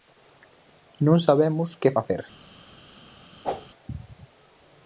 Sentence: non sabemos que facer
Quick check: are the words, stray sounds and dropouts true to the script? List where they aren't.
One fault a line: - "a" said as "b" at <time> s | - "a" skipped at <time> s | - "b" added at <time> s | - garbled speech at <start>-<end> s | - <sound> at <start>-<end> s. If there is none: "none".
- whoosh at 3.4-3.7 s